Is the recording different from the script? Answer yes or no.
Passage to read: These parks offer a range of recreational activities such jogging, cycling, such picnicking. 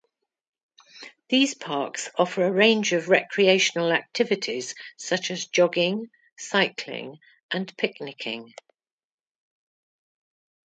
yes